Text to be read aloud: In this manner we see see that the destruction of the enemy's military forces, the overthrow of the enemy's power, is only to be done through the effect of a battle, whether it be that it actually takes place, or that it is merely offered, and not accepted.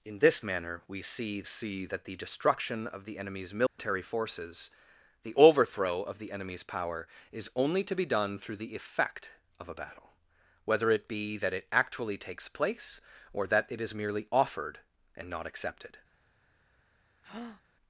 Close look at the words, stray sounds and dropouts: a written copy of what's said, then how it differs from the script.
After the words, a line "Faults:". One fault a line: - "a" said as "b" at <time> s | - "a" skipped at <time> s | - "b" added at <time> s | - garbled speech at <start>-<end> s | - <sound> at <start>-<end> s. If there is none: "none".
In this manner we see see that the destruction of the enemy's military forces, the overthrow of the enemy's power, is only to be done through the effect of a battle, whether it be that it actually takes place, or that it is merely offered, and not accepted.
Faults:
- dropout at 3.7-3.8 s
- breath at 17.2-17.6 s